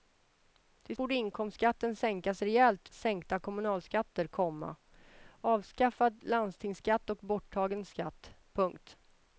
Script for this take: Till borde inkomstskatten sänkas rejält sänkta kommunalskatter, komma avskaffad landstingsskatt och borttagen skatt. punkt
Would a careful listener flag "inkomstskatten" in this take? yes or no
no